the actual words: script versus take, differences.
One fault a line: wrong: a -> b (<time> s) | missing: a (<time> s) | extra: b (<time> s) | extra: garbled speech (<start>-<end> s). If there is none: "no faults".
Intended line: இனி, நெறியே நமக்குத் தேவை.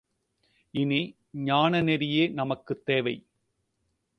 extra: ஞான (1.3 s)